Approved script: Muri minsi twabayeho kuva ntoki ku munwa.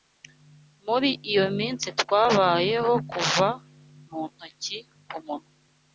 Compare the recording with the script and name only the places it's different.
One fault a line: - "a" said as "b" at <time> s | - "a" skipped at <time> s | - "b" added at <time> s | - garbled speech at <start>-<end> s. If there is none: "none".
- "iyo" added at 1.3 s
- "mu" added at 4.1 s